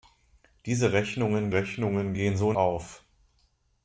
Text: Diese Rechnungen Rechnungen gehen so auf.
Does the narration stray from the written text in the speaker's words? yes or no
no